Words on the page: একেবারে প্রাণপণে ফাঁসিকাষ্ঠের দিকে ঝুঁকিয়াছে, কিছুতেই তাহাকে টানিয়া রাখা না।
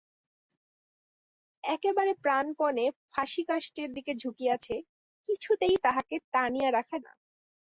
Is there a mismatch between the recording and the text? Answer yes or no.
no